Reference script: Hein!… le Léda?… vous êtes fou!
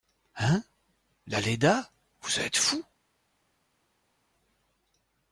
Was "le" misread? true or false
true